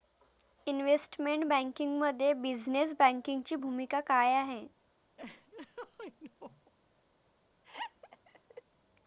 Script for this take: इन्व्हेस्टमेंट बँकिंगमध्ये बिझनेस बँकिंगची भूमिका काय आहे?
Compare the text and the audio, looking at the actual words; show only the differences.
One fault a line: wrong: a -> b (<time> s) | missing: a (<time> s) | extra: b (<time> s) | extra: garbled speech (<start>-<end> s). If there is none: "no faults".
no faults